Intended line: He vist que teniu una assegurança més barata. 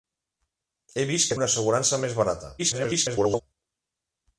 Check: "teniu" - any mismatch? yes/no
yes